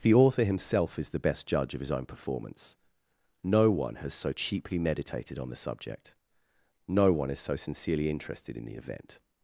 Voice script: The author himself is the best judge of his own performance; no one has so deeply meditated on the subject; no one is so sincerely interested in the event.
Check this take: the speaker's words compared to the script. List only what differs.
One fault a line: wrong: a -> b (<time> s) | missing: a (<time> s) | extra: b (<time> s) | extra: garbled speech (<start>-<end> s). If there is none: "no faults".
wrong: deeply -> cheaply (4.3 s)